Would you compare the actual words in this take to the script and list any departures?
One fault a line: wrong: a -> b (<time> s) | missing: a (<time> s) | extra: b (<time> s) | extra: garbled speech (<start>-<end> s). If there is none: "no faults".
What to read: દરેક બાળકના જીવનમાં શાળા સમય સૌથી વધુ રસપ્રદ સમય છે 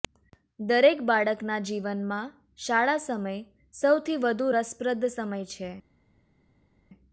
no faults